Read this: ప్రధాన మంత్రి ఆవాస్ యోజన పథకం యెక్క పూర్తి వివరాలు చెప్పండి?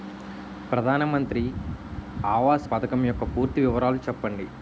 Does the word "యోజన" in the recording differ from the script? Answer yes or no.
yes